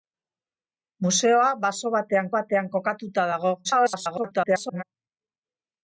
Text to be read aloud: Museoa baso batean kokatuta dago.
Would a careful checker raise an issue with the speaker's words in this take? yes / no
yes